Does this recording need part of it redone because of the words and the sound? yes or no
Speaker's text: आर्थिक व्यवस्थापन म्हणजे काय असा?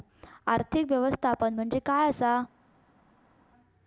no